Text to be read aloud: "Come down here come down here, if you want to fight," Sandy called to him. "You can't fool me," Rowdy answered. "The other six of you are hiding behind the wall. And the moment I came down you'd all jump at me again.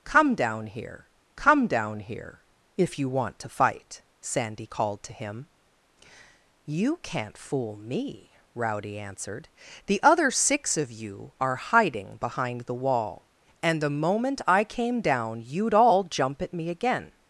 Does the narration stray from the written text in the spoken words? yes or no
no